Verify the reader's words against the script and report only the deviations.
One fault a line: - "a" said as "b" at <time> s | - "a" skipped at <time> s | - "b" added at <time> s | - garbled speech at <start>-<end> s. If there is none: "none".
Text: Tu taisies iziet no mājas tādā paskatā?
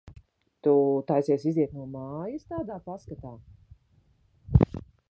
none